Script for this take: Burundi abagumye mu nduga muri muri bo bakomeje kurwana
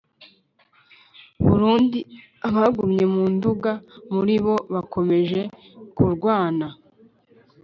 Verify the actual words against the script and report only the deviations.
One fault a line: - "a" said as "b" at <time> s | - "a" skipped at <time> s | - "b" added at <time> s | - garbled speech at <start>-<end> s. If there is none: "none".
- "muri" skipped at 4.3 s